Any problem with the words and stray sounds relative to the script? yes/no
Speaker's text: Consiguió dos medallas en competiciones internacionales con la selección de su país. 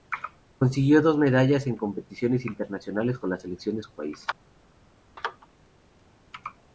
no